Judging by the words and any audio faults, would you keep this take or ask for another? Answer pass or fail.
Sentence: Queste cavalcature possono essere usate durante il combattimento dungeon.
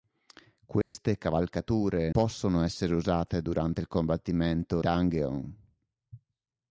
fail